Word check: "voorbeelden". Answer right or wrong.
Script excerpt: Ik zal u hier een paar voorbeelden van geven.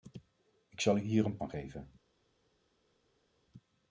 wrong